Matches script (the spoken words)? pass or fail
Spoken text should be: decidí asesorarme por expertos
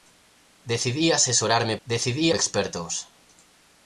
fail